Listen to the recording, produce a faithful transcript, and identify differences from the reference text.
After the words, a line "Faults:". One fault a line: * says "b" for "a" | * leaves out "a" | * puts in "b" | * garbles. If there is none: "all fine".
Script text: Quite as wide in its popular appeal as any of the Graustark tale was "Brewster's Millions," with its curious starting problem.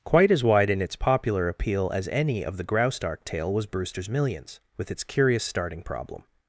Quite as wide in its popular appeal as any of the Graustark tale was "Brewster's Millions," with its curious starting problem.
Faults:
all fine